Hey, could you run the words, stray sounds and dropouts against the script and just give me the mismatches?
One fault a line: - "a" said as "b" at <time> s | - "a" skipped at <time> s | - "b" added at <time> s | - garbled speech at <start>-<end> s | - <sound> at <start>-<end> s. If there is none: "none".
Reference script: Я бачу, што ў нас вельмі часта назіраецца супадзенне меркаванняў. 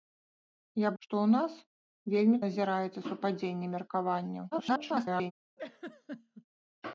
- "бачу" skipped at 0.9 s
- "часта" skipped at 2.4 s
- garbled speech at 4.5-5.3 s
- laugh at 5.6-6.4 s